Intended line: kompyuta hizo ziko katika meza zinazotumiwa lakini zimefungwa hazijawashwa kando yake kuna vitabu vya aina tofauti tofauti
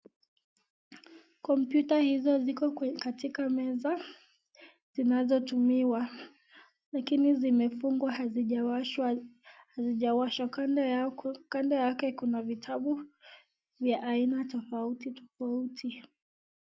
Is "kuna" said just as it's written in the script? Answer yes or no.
yes